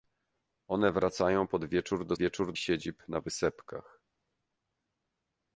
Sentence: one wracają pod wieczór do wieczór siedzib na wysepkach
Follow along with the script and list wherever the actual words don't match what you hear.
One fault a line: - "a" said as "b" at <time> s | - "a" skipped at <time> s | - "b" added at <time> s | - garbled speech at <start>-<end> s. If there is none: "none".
none